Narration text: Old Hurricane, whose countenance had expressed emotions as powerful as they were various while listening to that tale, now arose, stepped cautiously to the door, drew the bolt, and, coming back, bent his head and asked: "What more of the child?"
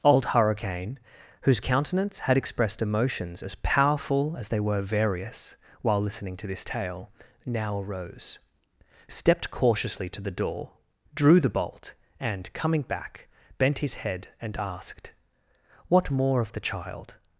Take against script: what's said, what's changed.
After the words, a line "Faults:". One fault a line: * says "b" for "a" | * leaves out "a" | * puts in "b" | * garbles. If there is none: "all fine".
Old Hurricane, whose countenance had expressed emotions as powerful as they were various while listening to this tale, now arose, stepped cautiously to the door, drew the bolt, and, coming back, bent his head and asked: "What more of the child?"
Faults:
* says "this" for "that"